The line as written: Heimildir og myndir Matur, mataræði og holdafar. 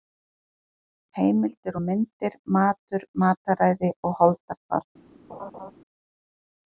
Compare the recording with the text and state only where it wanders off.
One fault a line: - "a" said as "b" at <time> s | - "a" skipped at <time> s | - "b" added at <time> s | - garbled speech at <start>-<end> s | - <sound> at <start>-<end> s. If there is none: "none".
- laugh at 5.3-5.7 s